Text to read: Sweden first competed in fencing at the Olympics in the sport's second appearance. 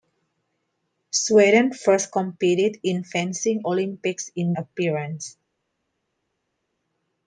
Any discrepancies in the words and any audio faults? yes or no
yes